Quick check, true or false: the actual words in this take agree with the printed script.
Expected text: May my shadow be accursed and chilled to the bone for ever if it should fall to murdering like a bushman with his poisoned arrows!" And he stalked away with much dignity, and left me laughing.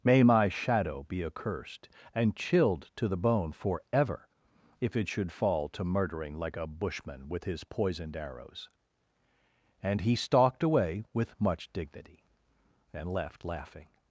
false